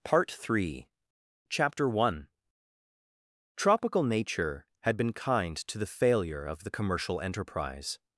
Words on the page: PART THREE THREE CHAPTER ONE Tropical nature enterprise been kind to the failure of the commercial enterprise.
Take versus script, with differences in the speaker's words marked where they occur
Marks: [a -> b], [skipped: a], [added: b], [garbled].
PART THREE [skipped: THREE] CHAPTER ONE Tropical nature [enterprise -> had] been kind to the failure of the commercial enterprise.